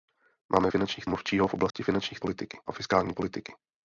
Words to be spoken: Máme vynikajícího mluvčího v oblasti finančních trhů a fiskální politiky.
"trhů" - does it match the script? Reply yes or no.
no